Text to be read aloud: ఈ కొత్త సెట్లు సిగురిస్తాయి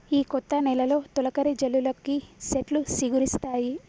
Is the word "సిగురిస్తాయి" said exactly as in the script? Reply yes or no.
yes